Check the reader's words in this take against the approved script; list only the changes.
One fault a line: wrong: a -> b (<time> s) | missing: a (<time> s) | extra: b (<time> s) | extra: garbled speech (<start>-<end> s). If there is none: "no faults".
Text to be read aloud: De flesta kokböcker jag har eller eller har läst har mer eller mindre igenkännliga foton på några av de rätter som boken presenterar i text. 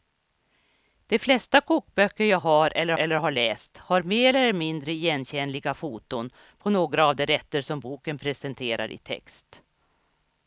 no faults